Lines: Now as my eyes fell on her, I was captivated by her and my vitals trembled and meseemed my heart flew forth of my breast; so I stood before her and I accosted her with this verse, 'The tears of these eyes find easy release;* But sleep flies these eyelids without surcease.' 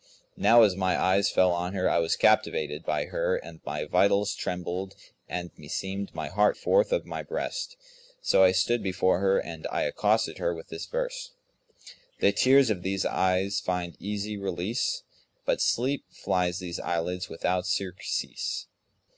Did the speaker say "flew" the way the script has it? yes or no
no